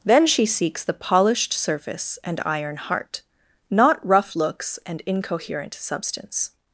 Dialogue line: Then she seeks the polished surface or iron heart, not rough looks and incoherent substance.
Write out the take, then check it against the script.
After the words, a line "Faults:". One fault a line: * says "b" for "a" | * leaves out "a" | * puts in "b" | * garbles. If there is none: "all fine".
Then she seeks the polished surface and iron heart, not rough looks and incoherent substance.
Faults:
* says "and" for "or"